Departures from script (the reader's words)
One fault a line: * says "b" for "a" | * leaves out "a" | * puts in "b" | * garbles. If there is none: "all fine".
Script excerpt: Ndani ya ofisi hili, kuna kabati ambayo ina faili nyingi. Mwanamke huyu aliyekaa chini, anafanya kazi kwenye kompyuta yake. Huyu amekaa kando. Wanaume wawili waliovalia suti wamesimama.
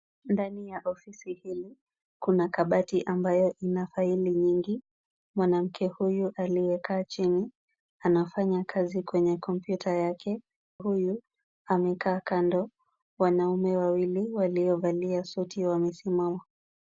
all fine